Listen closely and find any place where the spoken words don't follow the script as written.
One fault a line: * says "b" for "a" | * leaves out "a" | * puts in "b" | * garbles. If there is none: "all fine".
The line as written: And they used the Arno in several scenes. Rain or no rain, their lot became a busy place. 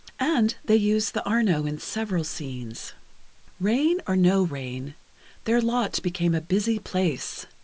all fine